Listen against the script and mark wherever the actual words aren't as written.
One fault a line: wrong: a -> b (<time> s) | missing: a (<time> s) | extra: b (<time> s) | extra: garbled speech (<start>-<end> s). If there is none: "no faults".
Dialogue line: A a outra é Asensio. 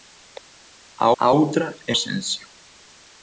no faults